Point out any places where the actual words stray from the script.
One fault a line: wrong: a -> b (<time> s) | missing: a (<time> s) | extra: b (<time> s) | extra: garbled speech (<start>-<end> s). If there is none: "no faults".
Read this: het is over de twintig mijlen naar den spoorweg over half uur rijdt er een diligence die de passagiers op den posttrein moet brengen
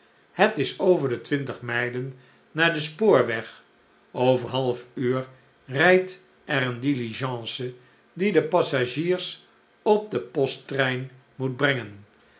no faults